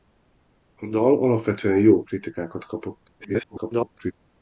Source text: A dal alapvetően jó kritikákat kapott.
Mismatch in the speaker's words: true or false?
true